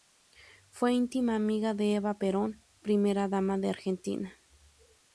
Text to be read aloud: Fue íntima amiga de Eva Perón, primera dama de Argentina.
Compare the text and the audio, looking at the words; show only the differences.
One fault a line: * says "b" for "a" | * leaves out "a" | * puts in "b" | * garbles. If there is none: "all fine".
all fine